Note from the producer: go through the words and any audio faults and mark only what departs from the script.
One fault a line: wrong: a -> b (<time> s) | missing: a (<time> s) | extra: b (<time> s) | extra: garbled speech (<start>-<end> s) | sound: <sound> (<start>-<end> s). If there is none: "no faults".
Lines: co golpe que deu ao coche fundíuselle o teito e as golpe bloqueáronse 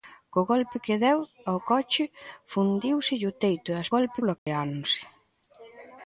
sound: dropout (4.4-4.5 s)